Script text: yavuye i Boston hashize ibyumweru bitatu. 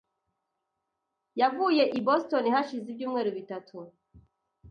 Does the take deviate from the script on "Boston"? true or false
false